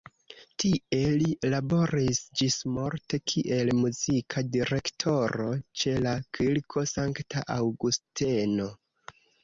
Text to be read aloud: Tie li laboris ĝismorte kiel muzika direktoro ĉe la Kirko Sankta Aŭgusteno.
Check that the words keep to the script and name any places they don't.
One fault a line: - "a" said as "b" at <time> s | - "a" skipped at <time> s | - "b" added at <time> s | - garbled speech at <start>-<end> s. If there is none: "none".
none